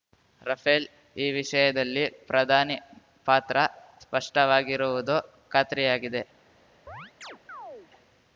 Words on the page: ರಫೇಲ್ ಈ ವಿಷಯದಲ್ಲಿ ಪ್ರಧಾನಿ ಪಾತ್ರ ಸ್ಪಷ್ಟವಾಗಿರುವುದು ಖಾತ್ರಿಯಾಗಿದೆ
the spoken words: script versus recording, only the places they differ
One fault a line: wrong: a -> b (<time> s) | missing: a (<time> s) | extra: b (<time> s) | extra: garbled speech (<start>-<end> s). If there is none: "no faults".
no faults